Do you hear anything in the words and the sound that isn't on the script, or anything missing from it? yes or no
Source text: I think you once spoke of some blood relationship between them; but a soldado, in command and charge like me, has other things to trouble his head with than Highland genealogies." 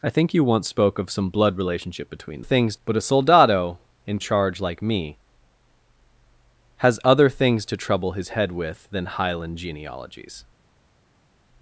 yes